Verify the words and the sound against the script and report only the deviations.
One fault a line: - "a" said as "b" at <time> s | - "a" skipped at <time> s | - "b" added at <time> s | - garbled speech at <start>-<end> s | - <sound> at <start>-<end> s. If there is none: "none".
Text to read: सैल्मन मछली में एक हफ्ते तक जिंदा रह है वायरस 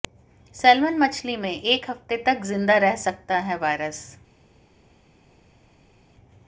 - "सकता" added at 3.0 s